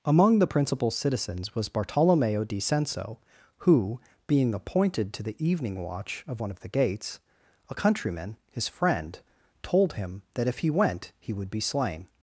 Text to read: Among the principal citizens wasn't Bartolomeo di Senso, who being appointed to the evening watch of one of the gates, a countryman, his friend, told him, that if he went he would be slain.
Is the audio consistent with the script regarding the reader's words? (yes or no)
no